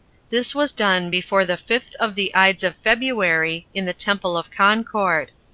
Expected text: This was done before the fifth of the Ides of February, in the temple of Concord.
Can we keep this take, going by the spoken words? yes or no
yes